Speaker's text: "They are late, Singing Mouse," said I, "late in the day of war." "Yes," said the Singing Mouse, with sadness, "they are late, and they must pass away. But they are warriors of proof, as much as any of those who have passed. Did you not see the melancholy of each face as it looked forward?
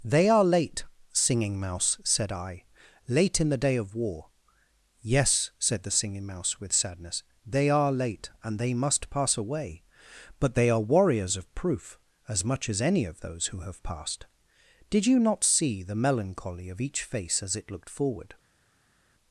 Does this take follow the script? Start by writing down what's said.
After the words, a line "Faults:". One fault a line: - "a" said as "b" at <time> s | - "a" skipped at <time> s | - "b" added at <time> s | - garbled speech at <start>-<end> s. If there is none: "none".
"They are late, Singing Mouse," said I, "late in the day of war." "Yes," said the Singing Mouse, with sadness, "they are late, and they must pass away. But they are warriors of proof, as much as any of those who have passed. Did you not see the melancholy of each face as it looked forward?
Faults:
none